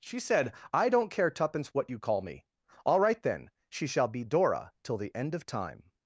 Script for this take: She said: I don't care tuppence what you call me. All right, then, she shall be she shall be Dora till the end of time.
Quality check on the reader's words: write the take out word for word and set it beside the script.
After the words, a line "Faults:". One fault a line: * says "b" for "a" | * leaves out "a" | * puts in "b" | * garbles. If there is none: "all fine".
She said: I don't care tuppence what you call me. All right, then, she shall be Dora till the end of time.
Faults:
* leaves out "she shall be"